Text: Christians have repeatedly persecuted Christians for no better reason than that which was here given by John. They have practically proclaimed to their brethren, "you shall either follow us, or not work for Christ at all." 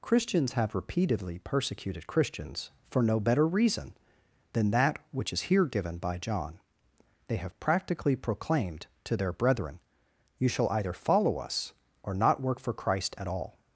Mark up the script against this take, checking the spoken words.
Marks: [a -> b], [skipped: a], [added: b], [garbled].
Christians have repeatedly persecuted Christians for no better reason than that which [was -> is] here given by John. They have practically proclaimed to their brethren, "you shall either follow us, or not work for Christ at all."